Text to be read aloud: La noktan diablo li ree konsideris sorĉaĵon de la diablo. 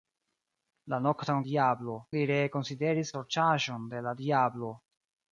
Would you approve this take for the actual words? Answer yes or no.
yes